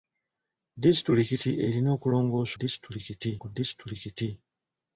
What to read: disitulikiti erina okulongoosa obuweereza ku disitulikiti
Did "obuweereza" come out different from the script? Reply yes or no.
yes